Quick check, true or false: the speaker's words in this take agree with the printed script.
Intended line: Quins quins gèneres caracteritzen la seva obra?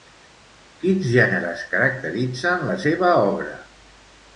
false